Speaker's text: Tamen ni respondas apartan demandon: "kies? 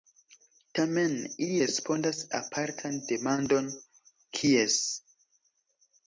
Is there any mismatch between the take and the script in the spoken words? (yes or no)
yes